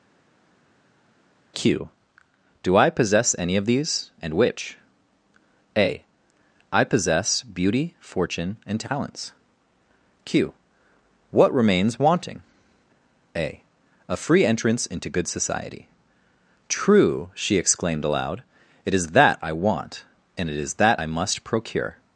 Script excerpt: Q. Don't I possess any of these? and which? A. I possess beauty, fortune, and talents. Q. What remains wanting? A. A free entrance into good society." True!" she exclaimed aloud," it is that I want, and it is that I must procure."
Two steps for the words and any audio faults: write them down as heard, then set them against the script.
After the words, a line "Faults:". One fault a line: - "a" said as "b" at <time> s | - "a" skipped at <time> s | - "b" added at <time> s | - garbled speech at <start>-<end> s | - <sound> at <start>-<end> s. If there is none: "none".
Q. Do I possess any of these? and which? A. I possess beauty, fortune, and talents. Q. What remains wanting? A. A free entrance into good society." True!" she exclaimed aloud," it is that I want, and it is that I must procure."
Faults:
- "Don't" said as "Do" at 2.6 s